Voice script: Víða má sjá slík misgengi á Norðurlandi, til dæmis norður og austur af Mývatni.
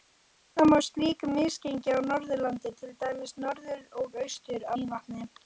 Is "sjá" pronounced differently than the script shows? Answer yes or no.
yes